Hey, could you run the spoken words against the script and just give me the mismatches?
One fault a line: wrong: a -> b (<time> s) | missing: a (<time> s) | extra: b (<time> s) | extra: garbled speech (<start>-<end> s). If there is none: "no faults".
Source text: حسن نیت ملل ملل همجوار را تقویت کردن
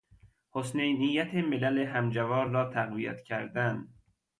missing: ملل (1.8 s)